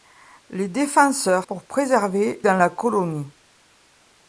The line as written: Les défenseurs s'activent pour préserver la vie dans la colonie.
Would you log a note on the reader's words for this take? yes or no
yes